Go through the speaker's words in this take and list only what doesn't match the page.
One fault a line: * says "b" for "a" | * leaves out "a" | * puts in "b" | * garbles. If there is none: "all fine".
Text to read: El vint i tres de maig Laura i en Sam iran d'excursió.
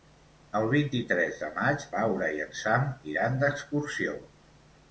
all fine